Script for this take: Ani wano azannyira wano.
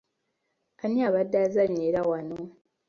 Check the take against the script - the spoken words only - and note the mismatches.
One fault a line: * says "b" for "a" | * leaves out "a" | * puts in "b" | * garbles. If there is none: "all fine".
* says "abadde" for "wano"